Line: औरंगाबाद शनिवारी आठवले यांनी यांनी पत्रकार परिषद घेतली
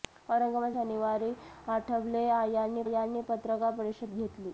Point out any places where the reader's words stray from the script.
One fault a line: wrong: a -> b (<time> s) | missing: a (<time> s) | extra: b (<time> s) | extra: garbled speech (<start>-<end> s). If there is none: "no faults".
no faults